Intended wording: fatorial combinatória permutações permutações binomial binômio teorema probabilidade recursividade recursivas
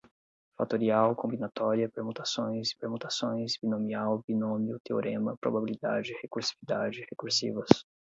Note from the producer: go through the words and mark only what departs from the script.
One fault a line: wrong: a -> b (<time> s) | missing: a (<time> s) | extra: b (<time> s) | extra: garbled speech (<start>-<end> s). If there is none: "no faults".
no faults